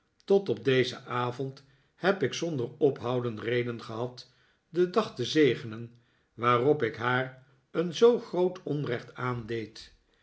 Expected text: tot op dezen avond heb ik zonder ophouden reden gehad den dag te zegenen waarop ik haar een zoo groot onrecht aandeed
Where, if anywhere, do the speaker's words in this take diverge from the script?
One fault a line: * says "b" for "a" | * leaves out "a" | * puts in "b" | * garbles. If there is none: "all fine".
all fine